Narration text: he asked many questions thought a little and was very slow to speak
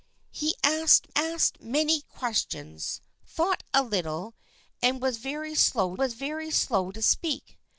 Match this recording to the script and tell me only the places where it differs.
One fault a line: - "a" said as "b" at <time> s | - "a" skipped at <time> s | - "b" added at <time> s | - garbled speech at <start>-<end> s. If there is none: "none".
- "asked" added at 1.2 s
- "was very slow" added at 6.0 s